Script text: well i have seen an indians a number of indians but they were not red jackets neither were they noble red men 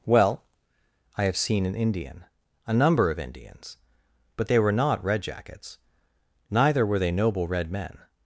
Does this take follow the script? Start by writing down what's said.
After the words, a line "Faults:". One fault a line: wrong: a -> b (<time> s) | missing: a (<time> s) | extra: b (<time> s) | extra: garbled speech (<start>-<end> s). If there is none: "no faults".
well i have seen an indian a number of indians but they were not red jackets neither were they noble red men
Faults:
wrong: indians -> indian (1.8 s)